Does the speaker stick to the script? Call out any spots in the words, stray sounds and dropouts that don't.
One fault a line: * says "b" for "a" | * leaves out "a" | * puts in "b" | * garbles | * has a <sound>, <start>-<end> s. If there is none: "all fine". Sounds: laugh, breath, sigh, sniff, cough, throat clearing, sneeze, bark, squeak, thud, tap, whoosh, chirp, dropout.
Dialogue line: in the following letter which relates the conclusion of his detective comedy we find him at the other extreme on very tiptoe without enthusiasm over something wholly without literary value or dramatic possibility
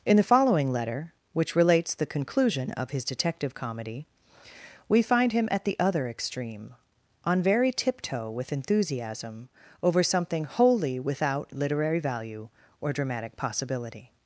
* says "with" for "without"